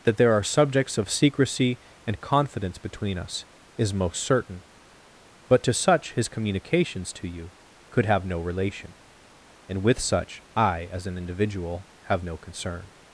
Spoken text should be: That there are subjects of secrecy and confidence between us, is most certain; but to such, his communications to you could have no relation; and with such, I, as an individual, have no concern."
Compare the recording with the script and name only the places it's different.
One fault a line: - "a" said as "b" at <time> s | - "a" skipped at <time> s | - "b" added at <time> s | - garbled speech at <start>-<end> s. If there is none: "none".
none